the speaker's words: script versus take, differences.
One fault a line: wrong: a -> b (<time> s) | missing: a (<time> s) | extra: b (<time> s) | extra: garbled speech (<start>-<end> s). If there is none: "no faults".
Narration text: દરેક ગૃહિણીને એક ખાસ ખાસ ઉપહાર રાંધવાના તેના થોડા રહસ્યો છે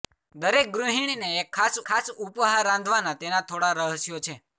no faults